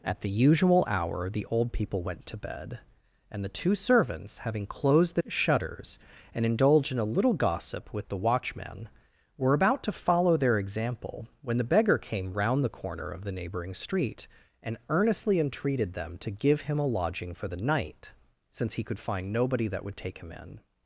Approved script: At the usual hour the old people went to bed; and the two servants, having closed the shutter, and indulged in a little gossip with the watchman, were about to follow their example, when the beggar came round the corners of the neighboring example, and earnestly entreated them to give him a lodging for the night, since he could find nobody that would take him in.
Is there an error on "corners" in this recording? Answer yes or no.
yes